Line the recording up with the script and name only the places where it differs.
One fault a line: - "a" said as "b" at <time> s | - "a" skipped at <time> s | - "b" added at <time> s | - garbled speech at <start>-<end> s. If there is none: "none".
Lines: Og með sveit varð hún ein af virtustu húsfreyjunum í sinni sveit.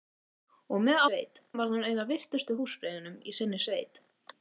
none